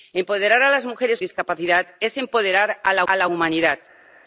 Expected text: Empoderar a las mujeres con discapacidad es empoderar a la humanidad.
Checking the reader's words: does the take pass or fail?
fail